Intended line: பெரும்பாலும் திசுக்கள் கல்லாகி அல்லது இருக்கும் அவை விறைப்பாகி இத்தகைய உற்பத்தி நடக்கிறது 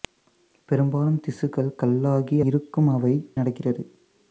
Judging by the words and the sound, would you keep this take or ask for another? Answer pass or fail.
fail